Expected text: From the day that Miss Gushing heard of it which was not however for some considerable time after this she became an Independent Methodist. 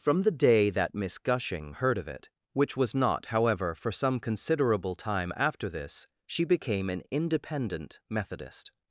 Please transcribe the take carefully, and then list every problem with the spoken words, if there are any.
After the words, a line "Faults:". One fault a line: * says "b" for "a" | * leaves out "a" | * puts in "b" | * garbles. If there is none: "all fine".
From the day that Miss Gushing heard of it which was not however for some considerable time after this she became an Independent Methodist.
Faults:
all fine